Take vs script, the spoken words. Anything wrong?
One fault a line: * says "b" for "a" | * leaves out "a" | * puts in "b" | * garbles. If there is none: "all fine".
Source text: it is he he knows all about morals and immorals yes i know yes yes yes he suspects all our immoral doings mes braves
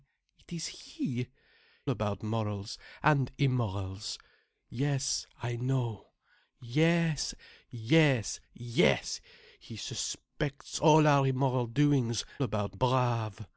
* leaves out "he knows all"
* says "about" for "mes"